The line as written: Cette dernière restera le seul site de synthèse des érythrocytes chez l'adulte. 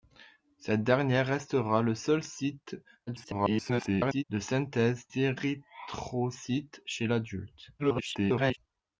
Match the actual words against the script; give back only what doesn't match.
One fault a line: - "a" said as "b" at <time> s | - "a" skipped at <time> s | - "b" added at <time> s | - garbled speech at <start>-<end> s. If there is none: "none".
- garbled speech at 3.1-4.2 s
- "des" skipped at 5.0 s
- garbled speech at 7.8-8.6 s